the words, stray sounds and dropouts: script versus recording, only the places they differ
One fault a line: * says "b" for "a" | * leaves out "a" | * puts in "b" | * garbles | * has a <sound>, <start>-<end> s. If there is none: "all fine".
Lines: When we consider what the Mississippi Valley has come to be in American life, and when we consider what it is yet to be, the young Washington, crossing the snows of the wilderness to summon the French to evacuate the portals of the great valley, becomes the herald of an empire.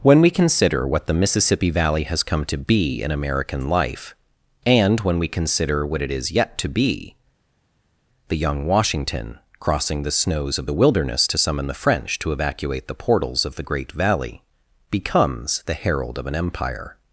all fine